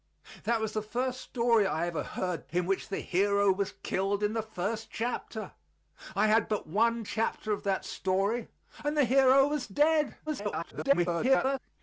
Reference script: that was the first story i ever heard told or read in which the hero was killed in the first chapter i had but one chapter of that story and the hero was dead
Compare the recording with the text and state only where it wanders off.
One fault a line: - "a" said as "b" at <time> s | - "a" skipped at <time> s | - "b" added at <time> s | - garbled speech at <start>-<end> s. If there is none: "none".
- "told or read" skipped at 2.5 s
- garbled speech at 10.3-11.6 s